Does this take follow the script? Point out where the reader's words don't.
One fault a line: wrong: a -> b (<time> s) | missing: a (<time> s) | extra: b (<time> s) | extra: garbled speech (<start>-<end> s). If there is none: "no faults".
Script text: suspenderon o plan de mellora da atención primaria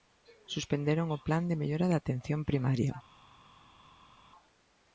no faults